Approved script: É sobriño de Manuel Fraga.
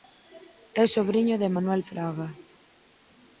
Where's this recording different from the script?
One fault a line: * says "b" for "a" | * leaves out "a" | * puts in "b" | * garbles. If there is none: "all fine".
all fine